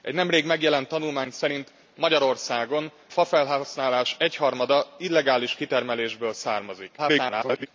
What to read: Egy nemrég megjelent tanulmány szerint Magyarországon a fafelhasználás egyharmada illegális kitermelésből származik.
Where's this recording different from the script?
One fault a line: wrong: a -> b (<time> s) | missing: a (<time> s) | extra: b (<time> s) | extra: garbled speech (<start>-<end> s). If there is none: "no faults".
missing: a (2.9 s)
extra: garbled speech (7.0-7.7 s)